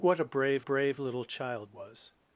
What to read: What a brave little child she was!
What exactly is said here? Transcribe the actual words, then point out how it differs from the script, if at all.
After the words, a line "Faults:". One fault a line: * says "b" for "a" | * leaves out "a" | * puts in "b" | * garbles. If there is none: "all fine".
What a brave brave little child was!
Faults:
* puts in "brave"
* leaves out "she"